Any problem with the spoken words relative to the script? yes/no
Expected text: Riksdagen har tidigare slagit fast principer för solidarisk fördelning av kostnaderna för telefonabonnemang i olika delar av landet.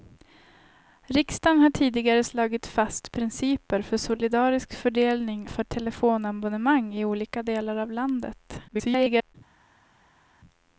yes